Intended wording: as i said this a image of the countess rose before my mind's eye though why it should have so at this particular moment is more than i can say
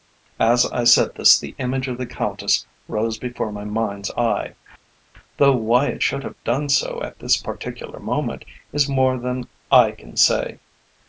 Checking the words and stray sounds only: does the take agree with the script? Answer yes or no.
no